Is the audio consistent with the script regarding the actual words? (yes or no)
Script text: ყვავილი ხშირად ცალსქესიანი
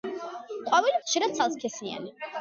yes